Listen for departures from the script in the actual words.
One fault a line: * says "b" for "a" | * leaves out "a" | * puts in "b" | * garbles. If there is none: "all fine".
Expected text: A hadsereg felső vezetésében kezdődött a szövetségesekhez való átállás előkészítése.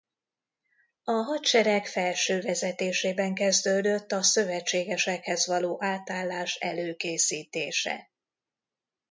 all fine